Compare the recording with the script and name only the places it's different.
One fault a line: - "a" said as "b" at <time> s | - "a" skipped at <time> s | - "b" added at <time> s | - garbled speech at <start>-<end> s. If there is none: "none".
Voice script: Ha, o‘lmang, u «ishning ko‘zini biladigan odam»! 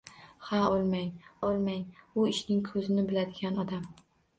- "o‘lmang" added at 1.5 s